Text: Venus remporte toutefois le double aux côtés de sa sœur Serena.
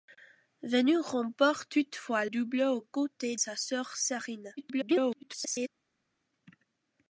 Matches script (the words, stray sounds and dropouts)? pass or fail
fail